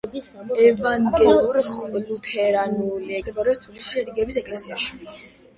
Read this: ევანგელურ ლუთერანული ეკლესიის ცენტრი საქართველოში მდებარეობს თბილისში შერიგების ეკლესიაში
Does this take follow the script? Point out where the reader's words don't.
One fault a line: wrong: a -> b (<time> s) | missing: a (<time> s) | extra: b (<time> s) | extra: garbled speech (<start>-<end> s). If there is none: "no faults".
missing: ეკლესიის ცენტრი საქართველოში (3.2 s)